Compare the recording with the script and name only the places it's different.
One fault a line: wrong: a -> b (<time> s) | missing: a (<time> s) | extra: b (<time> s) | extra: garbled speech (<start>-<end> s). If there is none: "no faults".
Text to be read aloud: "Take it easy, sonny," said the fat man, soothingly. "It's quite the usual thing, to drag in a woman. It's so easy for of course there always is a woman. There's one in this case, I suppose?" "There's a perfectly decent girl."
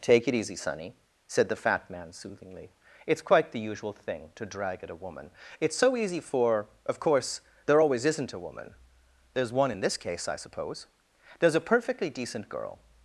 wrong: in -> at (4.8 s)
wrong: is -> isn't (8.1 s)